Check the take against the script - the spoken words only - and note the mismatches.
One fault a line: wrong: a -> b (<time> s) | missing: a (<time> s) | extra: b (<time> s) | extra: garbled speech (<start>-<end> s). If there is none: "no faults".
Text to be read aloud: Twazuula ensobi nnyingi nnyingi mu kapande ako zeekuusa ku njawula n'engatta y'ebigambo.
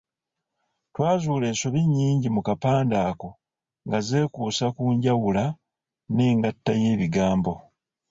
missing: nnyingi (2.3 s)
extra: nga (3.9 s)